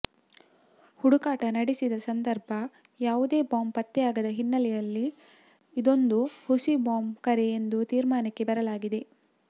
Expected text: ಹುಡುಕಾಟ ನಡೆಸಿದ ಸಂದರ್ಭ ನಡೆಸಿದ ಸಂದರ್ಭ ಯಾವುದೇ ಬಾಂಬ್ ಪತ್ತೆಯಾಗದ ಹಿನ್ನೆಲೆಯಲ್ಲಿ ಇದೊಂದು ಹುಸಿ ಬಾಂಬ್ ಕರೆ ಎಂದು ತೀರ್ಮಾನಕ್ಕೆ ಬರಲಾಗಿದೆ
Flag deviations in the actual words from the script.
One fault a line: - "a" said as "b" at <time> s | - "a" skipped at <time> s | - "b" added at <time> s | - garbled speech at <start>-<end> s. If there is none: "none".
- "ನಡೆಸಿದ ಸಂದರ್ಭ" skipped at 2.5 s